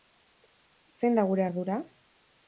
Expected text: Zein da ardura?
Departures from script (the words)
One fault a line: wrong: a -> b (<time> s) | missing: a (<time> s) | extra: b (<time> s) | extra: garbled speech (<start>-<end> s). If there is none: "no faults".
extra: gure (1.3 s)